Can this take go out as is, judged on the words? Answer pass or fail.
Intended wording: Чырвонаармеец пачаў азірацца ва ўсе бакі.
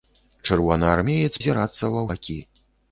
fail